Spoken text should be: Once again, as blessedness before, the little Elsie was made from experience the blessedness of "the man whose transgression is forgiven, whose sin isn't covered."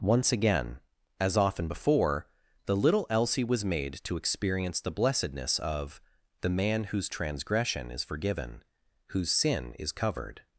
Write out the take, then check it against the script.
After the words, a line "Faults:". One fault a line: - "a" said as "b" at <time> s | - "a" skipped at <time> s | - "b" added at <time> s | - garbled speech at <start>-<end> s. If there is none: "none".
Once again, as often before, the little Elsie was made to experience the blessedness of "the man whose transgression is forgiven, whose sin is covered."
Faults:
- "blessedness" said as "often" at 1.4 s
- "from" said as "to" at 4.0 s
- "isn't" said as "is" at 9.8 s